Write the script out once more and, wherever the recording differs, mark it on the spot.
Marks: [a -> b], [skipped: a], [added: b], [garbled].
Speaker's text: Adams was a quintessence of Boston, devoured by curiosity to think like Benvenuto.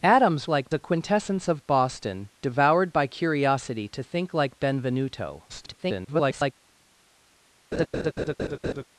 Adams [was -> like] a quintessence of Boston, devoured by curiosity to think like Benvenuto. [garbled]